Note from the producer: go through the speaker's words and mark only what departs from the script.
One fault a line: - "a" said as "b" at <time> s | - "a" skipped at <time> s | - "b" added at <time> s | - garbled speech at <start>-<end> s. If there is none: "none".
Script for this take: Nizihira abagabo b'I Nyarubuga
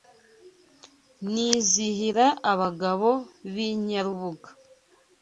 none